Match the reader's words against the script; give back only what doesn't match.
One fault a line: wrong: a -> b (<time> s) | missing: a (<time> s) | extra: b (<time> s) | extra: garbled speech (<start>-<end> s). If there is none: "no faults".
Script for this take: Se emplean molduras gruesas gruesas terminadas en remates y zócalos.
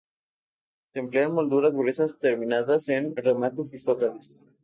missing: gruesas (2.2 s)